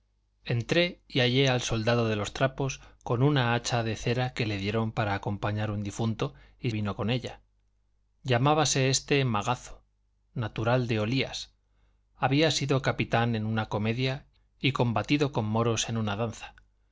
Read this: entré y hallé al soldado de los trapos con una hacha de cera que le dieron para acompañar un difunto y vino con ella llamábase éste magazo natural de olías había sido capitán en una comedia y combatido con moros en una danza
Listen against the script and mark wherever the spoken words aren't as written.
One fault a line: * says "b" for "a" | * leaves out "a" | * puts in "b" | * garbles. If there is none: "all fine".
all fine